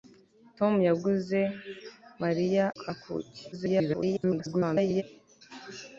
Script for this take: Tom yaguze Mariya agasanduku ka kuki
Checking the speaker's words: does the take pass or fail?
fail